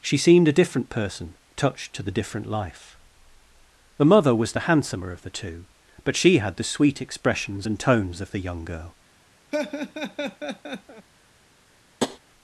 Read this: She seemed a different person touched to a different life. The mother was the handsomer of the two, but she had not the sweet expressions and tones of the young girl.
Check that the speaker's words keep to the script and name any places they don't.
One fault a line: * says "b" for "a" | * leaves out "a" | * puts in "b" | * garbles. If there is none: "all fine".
* says "the" for "a"
* leaves out "not"